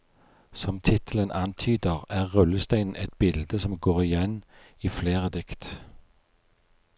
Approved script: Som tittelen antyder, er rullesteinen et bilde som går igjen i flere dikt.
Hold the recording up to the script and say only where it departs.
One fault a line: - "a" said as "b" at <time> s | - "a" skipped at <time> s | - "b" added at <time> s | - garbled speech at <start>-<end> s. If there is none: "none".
none